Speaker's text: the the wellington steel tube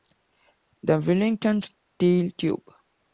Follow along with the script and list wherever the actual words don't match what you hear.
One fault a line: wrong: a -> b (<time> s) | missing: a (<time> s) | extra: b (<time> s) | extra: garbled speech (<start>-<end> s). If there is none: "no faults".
missing: the (1.0 s)